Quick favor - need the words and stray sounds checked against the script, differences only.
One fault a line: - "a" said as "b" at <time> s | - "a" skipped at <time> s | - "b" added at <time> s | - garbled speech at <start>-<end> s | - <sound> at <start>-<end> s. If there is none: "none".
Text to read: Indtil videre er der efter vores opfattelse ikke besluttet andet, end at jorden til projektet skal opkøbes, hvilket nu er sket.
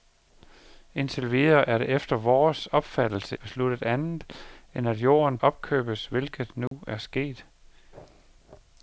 - "ikke" skipped at 3.4 s
- "til projektet skal" skipped at 5.4 s
- dropout at 6.7-6.7 s